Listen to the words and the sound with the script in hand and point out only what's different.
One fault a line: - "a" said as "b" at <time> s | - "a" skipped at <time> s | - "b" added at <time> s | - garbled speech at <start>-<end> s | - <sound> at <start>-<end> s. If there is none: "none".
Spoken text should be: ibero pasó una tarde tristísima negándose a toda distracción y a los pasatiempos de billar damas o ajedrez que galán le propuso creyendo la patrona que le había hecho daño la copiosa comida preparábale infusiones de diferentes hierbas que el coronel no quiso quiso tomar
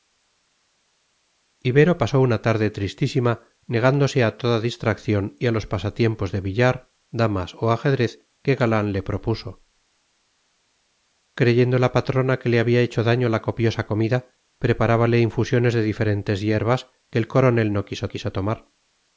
none